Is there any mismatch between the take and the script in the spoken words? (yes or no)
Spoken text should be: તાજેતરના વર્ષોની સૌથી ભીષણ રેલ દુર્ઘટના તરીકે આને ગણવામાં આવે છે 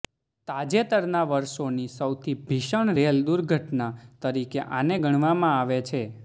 no